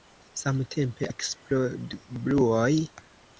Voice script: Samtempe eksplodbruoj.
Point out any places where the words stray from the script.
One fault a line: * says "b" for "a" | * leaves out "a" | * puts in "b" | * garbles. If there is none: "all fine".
all fine